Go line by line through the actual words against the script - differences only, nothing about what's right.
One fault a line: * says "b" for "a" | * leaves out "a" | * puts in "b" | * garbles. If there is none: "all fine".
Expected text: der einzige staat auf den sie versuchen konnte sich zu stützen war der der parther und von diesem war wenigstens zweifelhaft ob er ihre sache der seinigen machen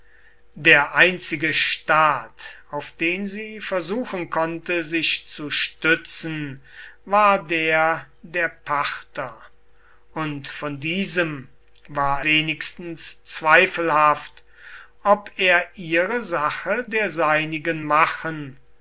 all fine